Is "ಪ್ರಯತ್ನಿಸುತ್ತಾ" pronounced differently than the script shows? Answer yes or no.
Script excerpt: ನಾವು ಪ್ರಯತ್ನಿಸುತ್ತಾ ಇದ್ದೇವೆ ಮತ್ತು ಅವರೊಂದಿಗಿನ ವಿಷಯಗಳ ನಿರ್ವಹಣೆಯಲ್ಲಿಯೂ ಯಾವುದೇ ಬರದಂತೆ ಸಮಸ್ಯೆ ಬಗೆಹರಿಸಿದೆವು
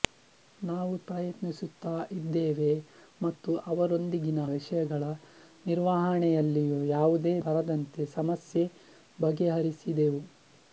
no